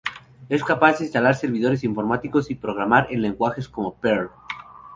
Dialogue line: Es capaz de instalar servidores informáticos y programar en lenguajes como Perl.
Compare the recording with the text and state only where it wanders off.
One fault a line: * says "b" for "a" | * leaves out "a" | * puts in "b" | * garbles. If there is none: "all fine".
all fine